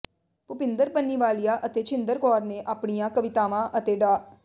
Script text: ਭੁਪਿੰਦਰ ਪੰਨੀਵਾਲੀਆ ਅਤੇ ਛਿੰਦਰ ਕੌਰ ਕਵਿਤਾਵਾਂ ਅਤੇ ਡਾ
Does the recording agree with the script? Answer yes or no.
no